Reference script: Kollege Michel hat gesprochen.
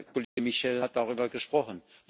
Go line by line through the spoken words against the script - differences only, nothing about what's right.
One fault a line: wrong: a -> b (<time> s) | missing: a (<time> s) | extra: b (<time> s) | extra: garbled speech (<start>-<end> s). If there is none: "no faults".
extra: darüber (0.9 s)